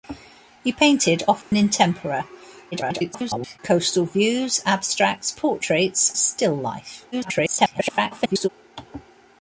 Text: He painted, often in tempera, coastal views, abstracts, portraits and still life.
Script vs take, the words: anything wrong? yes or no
yes